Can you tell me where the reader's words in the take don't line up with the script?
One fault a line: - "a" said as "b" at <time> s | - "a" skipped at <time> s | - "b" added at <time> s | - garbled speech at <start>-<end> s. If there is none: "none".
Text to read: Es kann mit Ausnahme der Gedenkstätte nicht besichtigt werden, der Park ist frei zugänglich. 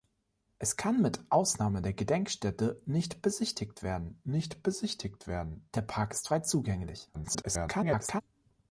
- "nicht besichtigt werden" added at 4.3 s
- garbled speech at 7.1-8.2 s